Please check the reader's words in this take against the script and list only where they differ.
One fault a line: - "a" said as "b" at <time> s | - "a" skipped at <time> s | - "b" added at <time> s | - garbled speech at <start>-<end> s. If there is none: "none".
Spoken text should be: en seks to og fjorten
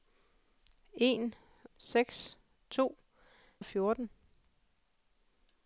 none